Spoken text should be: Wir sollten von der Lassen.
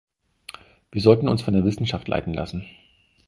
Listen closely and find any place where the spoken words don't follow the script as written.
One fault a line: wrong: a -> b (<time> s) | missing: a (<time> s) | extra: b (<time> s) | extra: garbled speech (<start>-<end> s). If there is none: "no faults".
extra: uns (1.3 s)
extra: Wissenschaft leiten (1.6 s)